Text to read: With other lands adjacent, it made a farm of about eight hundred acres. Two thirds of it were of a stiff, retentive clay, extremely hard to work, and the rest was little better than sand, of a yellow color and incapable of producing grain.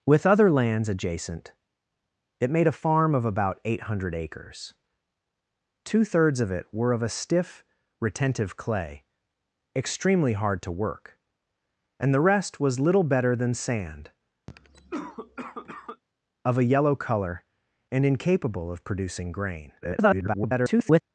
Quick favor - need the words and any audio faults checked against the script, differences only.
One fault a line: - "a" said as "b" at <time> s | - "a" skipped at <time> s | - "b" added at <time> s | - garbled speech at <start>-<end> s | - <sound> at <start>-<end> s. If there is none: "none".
- cough at 14.5-16.0 s
- garbled speech at 19.8-21.0 s